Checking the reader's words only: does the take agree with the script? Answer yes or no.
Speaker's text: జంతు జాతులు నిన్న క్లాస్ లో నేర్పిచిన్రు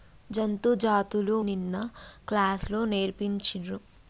yes